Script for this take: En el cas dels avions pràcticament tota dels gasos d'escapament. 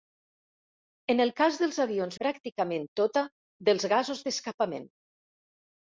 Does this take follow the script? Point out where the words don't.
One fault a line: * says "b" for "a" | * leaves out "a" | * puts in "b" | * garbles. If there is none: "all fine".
all fine